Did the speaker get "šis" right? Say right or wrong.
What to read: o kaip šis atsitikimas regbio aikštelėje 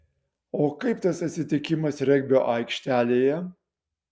wrong